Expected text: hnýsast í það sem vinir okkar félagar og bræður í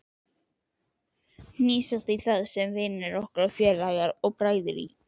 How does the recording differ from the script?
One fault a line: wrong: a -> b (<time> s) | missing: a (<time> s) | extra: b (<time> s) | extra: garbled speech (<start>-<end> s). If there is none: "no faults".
no faults